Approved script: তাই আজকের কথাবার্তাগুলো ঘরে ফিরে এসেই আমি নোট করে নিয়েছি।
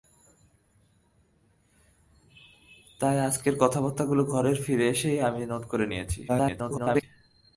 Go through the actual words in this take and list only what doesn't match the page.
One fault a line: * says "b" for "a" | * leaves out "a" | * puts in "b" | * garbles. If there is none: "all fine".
* garbles